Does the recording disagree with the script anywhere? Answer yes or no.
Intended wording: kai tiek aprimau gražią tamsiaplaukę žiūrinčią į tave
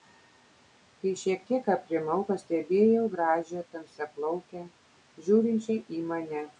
yes